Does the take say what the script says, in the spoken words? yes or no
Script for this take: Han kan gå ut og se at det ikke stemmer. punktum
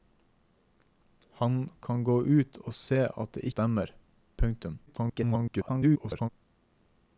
no